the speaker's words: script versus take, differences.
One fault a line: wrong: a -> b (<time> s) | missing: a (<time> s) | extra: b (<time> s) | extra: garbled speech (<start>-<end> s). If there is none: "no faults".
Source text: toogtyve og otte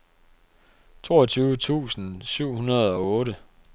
extra: tusind syv hundrede (1.6 s)